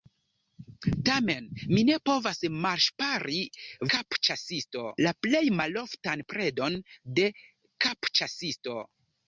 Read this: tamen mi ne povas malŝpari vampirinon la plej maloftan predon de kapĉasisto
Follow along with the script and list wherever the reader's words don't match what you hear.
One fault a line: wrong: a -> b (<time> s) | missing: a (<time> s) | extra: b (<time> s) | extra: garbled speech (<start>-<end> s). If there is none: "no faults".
wrong: vampirinon -> kapĉasisto (4.0 s)